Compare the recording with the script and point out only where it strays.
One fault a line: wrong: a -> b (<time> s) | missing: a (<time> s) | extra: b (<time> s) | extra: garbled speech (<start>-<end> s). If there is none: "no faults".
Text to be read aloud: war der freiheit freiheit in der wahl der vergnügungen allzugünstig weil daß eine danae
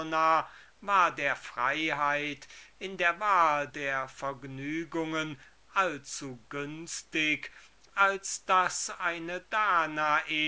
missing: freiheit (2.5 s)
wrong: weil -> als (7.9 s)